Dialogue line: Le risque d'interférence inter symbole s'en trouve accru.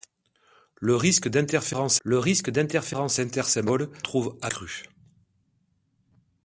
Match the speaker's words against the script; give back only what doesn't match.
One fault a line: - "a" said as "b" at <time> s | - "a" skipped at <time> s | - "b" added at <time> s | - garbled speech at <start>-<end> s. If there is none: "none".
- "le risque d'interférence" added at 2.0 s
- "s'en" skipped at 3.9 s